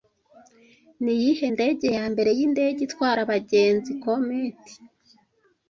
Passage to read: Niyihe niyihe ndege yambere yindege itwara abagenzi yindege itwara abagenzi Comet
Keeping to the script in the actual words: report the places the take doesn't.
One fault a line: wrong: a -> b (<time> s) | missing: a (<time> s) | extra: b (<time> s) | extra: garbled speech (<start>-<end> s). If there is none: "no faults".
missing: niyihe (1.5 s)
missing: yindege itwara abagenzi (3.9 s)